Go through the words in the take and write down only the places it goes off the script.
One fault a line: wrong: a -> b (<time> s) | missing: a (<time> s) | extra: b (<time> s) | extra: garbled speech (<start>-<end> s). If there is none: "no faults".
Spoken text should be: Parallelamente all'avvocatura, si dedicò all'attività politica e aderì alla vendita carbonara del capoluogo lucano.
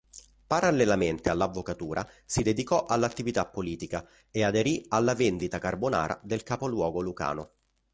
no faults